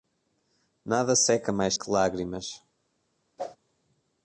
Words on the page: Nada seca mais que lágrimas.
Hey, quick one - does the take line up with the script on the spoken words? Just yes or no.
yes